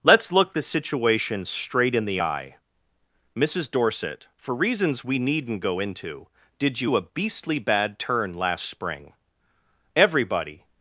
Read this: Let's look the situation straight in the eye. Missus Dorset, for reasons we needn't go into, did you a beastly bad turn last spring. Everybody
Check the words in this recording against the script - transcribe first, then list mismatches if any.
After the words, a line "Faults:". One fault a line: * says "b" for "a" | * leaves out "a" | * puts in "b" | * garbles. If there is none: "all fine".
Let's look the situation straight in the eye. Missus Dorset, for reasons we needn't go into, did you a beastly bad turn last spring. Everybody
Faults:
all fine